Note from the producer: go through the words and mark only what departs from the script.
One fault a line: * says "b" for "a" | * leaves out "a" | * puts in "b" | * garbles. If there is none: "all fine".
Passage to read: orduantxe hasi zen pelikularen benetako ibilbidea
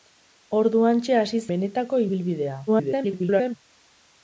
* leaves out "zen pelikularen"
* garbles